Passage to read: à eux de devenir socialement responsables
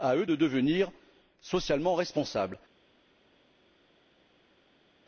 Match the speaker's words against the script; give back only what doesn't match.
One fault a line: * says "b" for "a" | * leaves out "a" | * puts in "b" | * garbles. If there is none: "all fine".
all fine